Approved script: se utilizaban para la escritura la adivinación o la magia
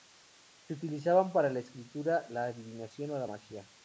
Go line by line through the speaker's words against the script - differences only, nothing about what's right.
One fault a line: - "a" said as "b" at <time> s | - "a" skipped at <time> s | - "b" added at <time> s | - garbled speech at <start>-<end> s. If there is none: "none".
none